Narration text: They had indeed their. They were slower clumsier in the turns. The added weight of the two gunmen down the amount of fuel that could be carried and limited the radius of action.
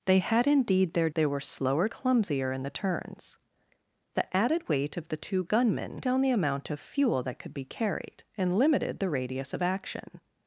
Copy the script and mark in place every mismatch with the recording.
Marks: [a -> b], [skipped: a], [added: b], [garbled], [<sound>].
They had indeed their. They were slower clumsier in the turns. The added weight of the two gunmen down the amount of fuel that could be carried and limited the radius of action.